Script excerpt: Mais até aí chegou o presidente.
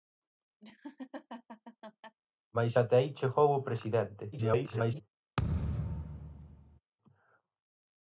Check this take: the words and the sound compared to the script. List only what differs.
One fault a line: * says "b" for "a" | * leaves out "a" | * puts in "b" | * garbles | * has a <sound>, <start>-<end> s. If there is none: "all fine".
* has a laugh, 0.6-2.2 s
* garbles
* has a thud, 5.4-6.8 s